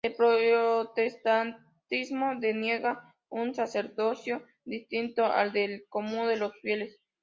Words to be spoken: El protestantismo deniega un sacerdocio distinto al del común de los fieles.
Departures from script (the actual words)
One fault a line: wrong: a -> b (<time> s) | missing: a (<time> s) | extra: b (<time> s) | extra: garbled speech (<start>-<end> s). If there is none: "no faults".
no faults